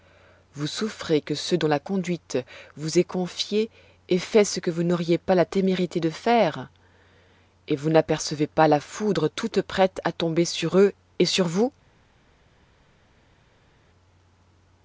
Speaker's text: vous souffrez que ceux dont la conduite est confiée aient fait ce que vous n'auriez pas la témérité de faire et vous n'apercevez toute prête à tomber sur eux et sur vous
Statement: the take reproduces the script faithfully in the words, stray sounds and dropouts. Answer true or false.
false